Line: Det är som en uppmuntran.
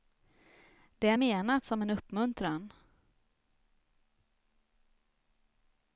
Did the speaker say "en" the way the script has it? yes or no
yes